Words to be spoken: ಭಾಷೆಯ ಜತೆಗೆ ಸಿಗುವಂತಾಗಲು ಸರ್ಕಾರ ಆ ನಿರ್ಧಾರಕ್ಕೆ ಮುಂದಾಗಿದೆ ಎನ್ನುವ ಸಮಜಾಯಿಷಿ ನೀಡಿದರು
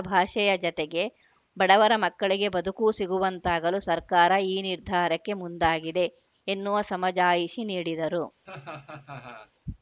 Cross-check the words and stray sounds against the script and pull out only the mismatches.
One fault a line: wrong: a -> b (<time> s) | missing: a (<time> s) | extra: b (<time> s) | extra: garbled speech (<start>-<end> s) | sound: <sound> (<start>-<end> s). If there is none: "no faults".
extra: ಬಡವರ ಮಕ್ಕಳಿಗೆ ಬದುಕೂ (1.6 s)
wrong: ಆ -> ಈ (4.5 s)
sound: laugh (8.5-9.5 s)